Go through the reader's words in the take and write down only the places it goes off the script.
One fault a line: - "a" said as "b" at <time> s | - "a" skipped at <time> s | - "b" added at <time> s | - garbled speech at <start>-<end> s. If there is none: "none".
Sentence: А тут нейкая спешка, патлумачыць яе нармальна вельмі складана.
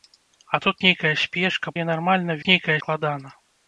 - "патлумачыць" skipped at 1.8 s
- "вельмі" said as "нейкая" at 2.5 s